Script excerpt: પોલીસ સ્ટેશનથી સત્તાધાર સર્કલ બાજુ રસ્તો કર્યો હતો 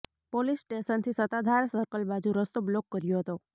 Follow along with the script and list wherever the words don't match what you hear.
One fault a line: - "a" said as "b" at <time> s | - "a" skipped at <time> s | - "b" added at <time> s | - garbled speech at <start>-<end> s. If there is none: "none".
- "બ્લોક" added at 2.7 s